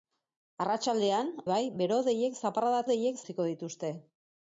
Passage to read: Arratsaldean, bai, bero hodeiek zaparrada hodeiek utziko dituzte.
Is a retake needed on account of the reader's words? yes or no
no